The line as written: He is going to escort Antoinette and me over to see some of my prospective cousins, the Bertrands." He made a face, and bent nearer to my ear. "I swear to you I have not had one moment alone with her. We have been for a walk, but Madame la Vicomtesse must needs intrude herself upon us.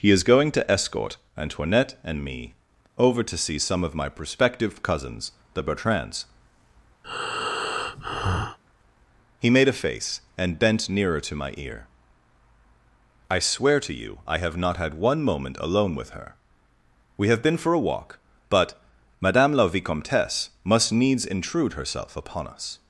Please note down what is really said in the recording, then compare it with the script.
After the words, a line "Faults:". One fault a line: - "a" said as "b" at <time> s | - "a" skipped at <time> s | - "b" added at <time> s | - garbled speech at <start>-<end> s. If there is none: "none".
He is going to escort Antoinette and me over to see some of my prospective cousins, the Bertrands." He made a face, and bent nearer to my ear. "I swear to you I have not had one moment alone with her. We have been for a walk, but Madame la Vicomtesse must needs intrude herself upon us.
Faults:
none